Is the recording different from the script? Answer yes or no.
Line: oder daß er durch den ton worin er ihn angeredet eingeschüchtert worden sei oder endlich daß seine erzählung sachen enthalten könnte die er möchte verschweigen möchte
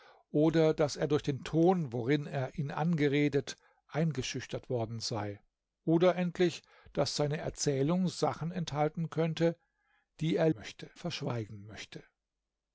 no